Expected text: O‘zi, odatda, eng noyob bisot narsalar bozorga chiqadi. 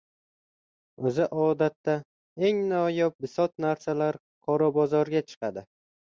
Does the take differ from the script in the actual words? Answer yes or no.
yes